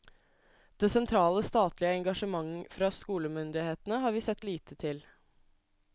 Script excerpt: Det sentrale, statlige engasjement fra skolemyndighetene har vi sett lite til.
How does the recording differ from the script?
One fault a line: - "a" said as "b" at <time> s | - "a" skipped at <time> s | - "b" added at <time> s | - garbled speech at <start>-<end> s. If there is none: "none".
none